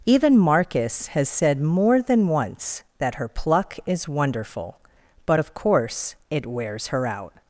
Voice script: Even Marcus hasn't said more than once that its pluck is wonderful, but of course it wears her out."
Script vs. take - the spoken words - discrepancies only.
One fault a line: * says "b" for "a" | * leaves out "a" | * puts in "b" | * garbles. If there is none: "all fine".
* says "has" for "hasn't"
* says "her" for "its"